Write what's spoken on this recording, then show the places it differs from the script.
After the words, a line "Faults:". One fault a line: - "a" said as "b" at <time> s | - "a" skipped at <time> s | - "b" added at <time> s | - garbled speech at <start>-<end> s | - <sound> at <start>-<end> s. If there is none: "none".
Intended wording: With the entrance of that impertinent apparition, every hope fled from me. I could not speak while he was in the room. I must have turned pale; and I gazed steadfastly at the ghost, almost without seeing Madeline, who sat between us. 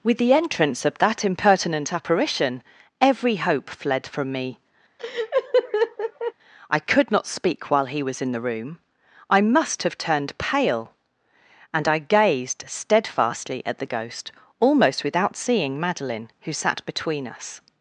With the entrance of that impertinent apparition, every hope fled from me. I could not speak while he was in the room. I must have turned pale; and I gazed steadfastly at the ghost, almost without seeing Madeline, who sat between us.
Faults:
- laugh at 5.0-6.3 s